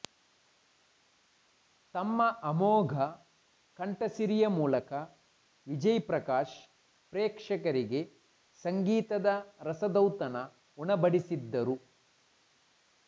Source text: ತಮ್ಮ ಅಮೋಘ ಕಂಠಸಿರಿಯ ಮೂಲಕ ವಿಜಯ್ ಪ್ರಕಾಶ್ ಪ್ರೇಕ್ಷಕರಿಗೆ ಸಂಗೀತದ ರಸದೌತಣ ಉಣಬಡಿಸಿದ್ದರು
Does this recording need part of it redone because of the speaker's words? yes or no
no